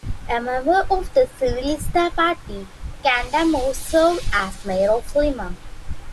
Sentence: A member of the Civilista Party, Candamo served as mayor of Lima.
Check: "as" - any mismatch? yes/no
no